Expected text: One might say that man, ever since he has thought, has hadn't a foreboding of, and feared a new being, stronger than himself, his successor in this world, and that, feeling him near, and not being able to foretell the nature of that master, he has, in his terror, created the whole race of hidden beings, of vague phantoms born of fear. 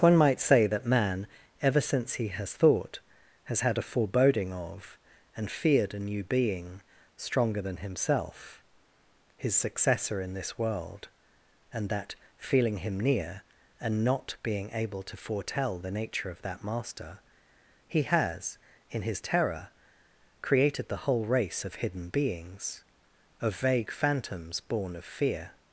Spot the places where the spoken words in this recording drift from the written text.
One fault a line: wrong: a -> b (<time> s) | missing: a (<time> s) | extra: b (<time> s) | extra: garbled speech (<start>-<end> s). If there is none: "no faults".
wrong: hadn't -> had (3.6 s)